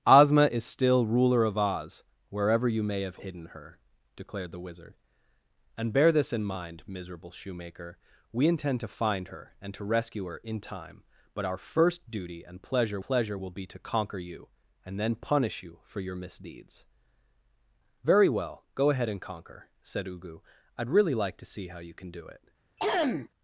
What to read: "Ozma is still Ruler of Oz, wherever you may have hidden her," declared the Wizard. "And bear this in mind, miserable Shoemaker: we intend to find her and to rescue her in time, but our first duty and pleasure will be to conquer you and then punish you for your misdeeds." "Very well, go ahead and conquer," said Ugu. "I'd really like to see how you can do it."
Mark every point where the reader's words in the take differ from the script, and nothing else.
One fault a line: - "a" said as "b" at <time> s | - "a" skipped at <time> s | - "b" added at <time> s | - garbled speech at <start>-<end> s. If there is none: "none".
- "pleasure" added at 13.0 s